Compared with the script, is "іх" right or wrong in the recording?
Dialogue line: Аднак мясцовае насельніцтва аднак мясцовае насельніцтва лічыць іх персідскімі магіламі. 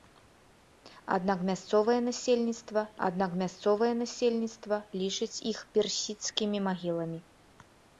right